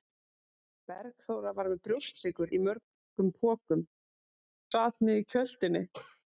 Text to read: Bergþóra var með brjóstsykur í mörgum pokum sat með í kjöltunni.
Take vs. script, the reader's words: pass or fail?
pass